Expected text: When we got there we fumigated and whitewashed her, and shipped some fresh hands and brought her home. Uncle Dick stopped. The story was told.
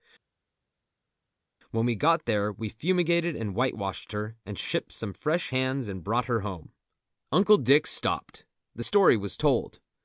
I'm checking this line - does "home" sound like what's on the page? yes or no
yes